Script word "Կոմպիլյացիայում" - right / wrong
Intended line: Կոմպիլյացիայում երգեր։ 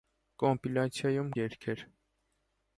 right